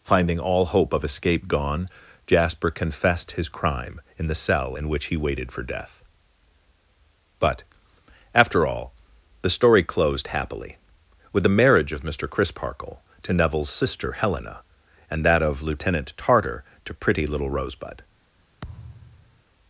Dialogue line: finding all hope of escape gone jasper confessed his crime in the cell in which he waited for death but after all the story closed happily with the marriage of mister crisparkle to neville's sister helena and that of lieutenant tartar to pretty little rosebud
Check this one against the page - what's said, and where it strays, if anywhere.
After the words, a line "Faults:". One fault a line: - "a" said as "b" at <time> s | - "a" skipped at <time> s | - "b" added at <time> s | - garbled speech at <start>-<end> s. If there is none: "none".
finding all hope of escape gone jasper confessed his crime in the cell in which he waited for death but after all the story closed happily with the marriage of mister crisparkle to neville's sister helena and that of lieutenant tartar to pretty little rosebud
Faults:
none